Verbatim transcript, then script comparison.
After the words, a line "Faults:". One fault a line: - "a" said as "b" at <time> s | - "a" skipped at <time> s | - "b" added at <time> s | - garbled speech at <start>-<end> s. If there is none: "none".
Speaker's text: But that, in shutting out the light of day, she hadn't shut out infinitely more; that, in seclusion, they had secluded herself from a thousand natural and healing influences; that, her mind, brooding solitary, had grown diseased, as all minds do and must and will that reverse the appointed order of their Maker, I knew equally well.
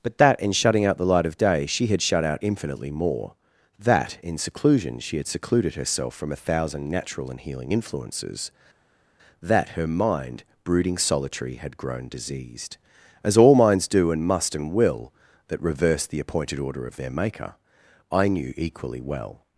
But that, in shutting out the light of day, she had shut out infinitely more; that, in seclusion, she had secluded herself from a thousand natural and healing influences; that, her mind, brooding solitary, had grown diseased, as all minds do and must and will that reverse the appointed order of their Maker, I knew equally well.
Faults:
- "hadn't" said as "had" at 1.9 s
- "they" said as "she" at 5.0 s